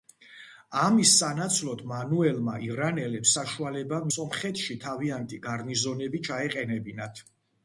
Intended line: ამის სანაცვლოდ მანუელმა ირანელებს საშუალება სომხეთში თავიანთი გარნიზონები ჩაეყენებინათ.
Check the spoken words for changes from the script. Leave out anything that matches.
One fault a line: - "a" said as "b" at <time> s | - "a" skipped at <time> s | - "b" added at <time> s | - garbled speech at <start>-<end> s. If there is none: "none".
none